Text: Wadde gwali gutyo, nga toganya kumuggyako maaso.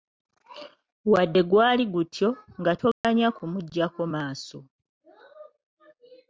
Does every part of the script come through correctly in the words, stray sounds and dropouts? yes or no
no